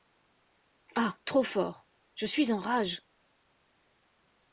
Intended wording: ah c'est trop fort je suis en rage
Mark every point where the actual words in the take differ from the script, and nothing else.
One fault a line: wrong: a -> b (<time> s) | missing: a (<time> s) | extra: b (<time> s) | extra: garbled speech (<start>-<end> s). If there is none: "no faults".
missing: c'est (1.2 s)